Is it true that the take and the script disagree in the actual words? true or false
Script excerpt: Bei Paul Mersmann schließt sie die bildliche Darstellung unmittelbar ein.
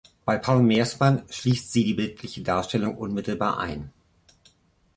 false